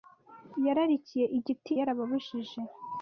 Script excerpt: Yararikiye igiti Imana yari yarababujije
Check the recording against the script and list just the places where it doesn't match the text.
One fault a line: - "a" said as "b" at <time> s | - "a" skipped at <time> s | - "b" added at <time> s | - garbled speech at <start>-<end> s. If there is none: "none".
- "Imana yari" skipped at 1.7 s